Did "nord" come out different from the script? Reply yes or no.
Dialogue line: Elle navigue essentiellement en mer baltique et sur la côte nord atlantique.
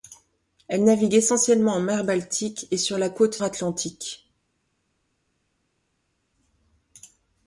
yes